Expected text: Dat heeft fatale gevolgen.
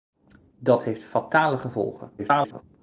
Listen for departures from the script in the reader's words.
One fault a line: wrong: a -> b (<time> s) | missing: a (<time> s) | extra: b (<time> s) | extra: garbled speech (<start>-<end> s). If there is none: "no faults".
extra: garbled speech (2.2-2.6 s)